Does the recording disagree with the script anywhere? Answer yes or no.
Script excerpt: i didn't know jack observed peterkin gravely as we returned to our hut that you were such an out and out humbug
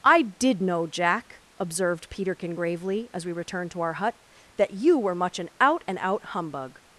yes